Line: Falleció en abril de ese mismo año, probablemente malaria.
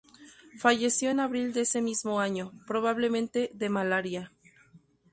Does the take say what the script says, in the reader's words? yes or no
no